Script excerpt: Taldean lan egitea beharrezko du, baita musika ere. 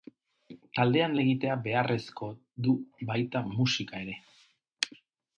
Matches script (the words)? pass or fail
fail